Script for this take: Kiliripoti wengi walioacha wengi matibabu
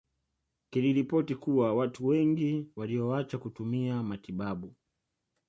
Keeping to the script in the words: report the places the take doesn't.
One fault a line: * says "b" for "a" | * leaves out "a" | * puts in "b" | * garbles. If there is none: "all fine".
* puts in "kuwa watu"
* says "kutumia" for "wengi"